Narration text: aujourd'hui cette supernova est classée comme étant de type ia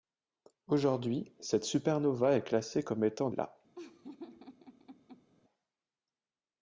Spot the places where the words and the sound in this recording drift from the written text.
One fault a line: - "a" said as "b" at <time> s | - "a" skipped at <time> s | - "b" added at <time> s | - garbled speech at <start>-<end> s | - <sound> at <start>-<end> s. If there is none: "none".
- "de type" skipped at 3.3 s
- laugh at 3.7-5.3 s